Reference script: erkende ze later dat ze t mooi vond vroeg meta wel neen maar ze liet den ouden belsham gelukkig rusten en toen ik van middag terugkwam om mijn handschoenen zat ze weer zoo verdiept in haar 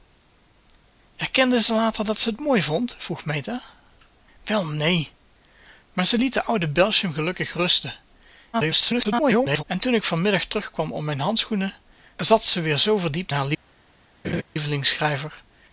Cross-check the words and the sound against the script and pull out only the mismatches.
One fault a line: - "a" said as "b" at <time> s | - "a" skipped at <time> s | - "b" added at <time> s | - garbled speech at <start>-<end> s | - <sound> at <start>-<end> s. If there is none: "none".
- garbled speech at 8.5-9.6 s
- "in" skipped at 13.3 s
- laugh at 14.2-14.4 s